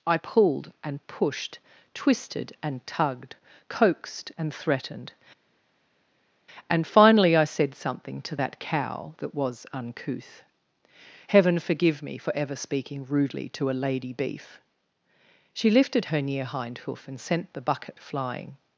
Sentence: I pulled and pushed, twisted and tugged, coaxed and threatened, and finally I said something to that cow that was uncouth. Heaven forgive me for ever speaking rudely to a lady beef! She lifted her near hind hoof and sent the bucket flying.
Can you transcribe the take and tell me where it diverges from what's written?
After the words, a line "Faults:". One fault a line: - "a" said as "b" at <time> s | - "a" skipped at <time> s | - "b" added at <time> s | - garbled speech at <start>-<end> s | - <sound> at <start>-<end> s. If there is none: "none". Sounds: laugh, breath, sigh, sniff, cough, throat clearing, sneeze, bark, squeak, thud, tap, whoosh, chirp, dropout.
I pulled and pushed, twisted and tugged, coaxed and threatened, and finally I said something to that cow that was uncouth. Heaven forgive me for ever speaking rudely to a lady beef! She lifted her near hind hoof and sent the bucket flying.
Faults:
none